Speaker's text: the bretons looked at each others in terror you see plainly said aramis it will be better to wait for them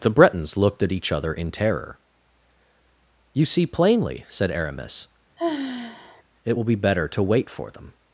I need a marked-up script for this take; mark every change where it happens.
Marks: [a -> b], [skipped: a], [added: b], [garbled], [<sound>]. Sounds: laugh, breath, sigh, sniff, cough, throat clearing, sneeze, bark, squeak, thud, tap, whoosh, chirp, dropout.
the bretons looked at each [others -> other] in terror you see plainly said aramis [sigh] it will be better to wait for them